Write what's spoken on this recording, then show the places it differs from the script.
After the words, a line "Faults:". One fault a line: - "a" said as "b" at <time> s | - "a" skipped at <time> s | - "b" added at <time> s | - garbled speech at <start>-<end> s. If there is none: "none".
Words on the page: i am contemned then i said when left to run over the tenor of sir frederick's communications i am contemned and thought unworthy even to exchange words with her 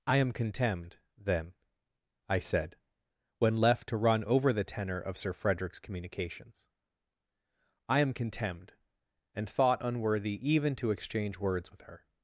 i am contemned then i said when left to run over the tenor of sir frederick's communications i am contemned and thought unworthy even to exchange words with her
Faults:
none